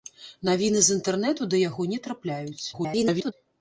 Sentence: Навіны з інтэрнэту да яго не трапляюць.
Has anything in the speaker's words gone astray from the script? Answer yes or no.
yes